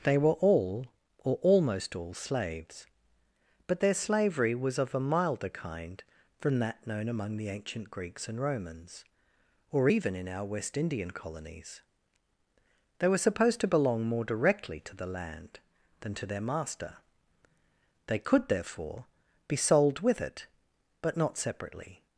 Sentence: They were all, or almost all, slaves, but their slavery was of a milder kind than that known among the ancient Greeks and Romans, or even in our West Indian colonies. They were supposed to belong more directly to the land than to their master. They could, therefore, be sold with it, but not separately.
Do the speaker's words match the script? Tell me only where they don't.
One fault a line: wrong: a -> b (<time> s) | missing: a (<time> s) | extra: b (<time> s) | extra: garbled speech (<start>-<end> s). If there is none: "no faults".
wrong: than -> from (6.4 s)